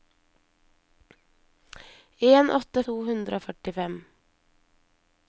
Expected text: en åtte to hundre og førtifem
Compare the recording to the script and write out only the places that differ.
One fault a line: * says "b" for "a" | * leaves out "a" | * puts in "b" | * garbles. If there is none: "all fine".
all fine